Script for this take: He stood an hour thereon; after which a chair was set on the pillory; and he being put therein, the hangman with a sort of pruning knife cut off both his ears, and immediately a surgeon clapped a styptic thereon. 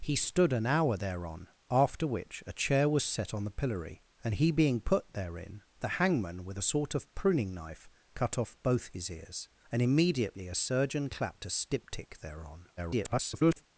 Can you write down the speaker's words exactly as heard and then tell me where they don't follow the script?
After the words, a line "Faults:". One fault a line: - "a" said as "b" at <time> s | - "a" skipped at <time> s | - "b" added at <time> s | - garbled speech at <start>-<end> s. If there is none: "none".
He stood an hour thereon; after which a chair was set on the pillory; and he being put therein, the hangman with a sort of pruning knife cut off both his ears, and immediately a surgeon clapped a styptic thereon. [garbled]
Faults:
- garbled speech at 12.8-13.7 s